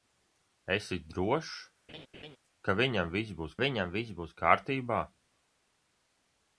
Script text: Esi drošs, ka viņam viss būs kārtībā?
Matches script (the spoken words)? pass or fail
fail